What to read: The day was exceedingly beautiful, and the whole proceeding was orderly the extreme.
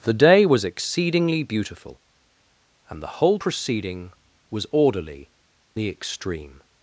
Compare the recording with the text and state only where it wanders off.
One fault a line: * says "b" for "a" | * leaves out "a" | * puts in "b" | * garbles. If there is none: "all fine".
all fine